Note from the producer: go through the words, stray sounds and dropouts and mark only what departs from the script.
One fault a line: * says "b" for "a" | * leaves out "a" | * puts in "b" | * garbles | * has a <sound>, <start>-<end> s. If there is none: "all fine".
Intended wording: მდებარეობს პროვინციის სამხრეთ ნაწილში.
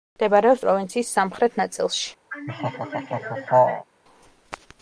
* has a laugh, 2.3-3.9 s